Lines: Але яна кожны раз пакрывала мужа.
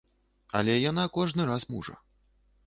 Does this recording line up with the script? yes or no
no